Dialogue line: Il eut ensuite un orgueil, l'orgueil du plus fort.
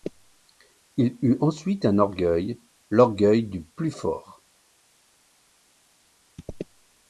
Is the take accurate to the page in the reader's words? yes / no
yes